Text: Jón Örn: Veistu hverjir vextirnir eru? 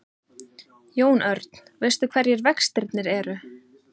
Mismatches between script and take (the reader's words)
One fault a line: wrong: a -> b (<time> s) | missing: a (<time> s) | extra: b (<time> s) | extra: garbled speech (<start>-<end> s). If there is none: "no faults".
no faults